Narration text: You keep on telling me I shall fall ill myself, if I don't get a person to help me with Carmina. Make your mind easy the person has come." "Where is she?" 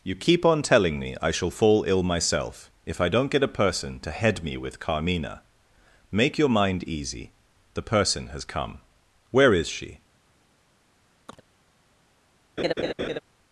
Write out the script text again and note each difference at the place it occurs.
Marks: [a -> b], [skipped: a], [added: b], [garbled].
You keep on telling me I shall fall ill myself, if I don't get a person to [help -> head] me with Carmina. Make your mind easy the person has come." "Where is she?"